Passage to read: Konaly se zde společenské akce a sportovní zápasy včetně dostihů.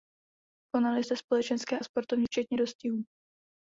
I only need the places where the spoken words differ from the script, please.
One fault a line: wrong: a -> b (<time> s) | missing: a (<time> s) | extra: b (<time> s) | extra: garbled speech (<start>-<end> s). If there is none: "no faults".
missing: se (1.0 s)
missing: akce (1.8 s)
missing: zápasy (2.3 s)